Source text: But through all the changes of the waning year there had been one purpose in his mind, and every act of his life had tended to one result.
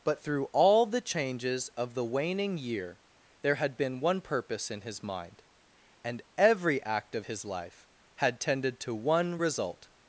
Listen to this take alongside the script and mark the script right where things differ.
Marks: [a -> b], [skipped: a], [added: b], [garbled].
But through all the changes of the waning year there had been one purpose in his mind, and every act of his life had tended to one result.